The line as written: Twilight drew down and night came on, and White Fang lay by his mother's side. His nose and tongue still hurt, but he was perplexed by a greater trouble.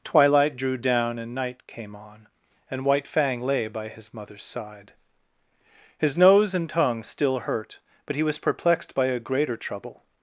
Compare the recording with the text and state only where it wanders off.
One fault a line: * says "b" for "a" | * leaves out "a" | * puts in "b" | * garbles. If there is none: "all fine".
all fine